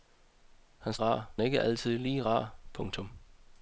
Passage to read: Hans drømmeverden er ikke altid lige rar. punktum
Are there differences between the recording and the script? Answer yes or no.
yes